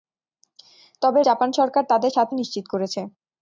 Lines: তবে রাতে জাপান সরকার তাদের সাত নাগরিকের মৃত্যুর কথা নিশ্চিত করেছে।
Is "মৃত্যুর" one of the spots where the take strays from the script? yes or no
yes